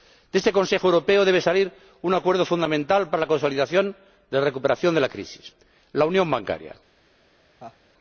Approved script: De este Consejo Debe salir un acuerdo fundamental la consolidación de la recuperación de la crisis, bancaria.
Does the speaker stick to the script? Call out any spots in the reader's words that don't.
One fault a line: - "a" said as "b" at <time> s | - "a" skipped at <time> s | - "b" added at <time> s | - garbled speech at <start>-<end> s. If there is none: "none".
- "Europeo" added at 0.9 s
- "para" added at 3.1 s
- "la unión" added at 5.9 s